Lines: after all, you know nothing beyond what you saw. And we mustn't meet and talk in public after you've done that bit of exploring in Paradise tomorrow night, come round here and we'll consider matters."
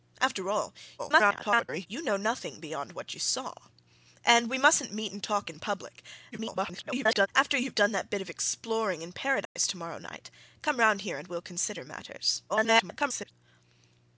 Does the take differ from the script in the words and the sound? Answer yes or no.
yes